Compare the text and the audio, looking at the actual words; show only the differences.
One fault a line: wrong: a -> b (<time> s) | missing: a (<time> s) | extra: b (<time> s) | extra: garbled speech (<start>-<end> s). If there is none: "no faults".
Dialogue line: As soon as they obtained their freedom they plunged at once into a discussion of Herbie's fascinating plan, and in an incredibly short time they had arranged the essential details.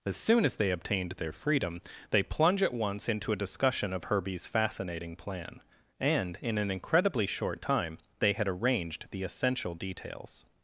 wrong: plunged -> plunge (2.2 s)